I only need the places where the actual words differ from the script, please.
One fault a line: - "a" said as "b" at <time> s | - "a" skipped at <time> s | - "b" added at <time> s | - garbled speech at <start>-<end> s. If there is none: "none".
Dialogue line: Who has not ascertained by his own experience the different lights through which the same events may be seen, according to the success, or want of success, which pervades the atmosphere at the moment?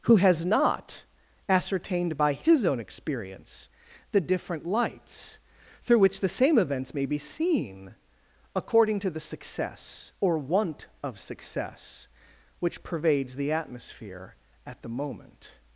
none